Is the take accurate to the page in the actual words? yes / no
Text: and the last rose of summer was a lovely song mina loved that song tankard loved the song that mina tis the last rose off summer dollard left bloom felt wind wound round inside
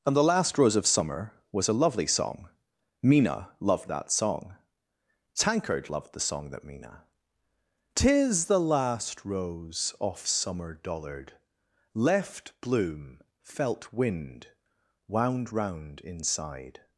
yes